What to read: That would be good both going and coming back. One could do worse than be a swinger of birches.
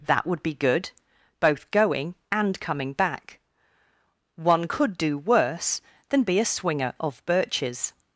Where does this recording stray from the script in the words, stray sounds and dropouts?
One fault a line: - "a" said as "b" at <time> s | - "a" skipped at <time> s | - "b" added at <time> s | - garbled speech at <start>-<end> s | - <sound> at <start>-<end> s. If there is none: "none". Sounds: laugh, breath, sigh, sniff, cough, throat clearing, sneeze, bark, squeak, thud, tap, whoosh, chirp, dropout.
none